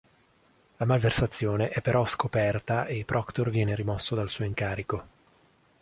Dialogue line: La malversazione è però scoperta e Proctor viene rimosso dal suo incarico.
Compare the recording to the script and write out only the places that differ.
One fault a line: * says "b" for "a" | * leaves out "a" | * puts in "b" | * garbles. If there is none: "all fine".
all fine